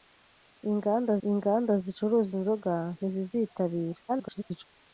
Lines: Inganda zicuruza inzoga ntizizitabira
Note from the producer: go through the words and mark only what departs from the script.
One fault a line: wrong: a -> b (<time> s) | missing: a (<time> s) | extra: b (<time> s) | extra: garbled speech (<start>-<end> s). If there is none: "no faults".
extra: inganda (1.3 s)
extra: garbled speech (4.1-4.7 s)